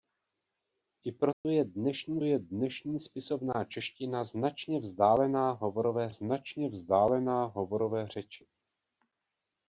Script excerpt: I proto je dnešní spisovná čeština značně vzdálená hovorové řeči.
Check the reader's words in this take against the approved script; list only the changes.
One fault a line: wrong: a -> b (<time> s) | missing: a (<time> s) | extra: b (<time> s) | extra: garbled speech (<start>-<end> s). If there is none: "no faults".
extra: je dnešní (2.2 s)
extra: značně vzdálená hovorové (6.1 s)